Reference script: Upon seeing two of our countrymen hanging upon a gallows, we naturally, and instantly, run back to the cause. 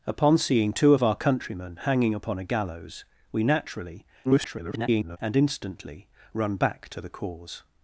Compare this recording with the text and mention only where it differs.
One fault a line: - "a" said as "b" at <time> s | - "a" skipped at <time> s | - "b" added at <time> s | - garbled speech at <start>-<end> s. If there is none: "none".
- garbled speech at 4.2-5.2 s